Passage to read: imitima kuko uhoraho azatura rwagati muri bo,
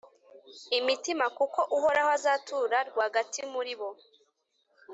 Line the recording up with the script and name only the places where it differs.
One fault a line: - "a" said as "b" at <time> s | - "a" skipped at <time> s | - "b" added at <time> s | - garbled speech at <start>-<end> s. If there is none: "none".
none